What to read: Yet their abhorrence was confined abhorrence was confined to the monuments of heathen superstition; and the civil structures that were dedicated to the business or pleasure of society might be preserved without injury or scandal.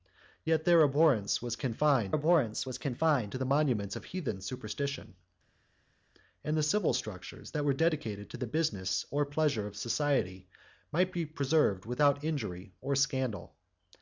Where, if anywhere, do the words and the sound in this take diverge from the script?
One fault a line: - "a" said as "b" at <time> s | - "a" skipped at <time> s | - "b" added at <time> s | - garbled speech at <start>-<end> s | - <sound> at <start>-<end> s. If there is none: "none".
none